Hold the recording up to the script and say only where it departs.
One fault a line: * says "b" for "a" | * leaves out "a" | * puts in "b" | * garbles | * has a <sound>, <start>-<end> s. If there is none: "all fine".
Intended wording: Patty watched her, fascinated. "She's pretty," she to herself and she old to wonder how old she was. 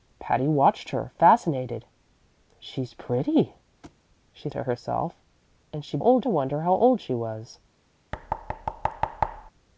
* has a thud, 3.8-4.0 s
* has a thud, 8.1-9.5 s